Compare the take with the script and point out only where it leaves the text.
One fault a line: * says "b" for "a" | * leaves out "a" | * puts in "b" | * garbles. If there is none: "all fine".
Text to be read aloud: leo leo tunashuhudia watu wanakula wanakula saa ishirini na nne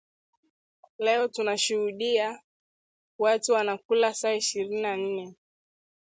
* leaves out "leo"
* leaves out "wanakula"